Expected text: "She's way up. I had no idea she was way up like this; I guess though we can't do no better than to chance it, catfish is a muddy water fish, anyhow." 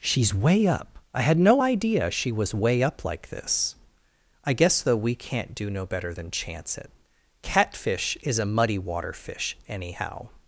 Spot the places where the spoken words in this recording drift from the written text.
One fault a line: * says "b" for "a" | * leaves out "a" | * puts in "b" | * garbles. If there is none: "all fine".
* leaves out "to"